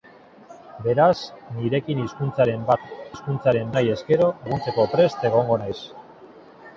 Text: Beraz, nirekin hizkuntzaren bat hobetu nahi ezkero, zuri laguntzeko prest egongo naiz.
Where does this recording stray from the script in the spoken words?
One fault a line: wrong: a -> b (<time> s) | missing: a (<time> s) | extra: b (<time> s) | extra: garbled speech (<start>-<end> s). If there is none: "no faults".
wrong: hobetu -> hizkuntzaren (3.1 s)
missing: zuri (4.3 s)